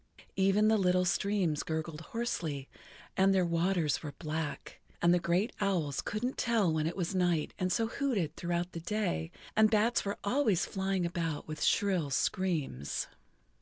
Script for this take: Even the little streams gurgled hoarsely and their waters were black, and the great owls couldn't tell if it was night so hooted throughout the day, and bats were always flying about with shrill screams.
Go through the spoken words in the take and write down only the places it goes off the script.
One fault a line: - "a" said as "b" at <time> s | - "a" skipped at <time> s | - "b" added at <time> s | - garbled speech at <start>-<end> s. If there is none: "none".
- "if" said as "when" at 6.7 s
- "and" added at 7.6 s